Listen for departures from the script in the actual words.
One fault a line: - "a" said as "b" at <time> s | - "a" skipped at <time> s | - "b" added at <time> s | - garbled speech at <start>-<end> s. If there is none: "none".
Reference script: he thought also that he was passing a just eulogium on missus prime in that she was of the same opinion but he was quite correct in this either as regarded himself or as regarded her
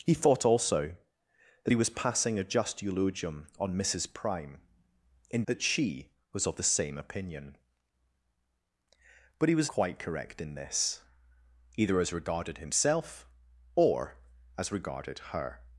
none